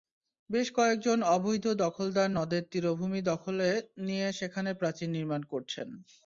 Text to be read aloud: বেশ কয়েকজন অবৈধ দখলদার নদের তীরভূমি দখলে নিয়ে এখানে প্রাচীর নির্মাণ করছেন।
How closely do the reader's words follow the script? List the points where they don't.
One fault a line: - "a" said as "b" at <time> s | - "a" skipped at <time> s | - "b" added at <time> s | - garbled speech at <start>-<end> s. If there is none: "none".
- "এখানে" said as "সেখানে" at 4.3 s